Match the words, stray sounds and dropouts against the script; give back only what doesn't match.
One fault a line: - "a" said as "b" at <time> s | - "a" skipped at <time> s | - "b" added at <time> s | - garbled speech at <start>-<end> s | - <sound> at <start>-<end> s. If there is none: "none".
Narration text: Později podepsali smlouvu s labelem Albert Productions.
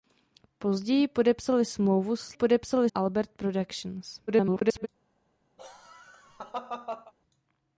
- "labelem" said as "podepsali" at 2.3 s
- garbled speech at 4.3-4.9 s
- laugh at 5.6-7.1 s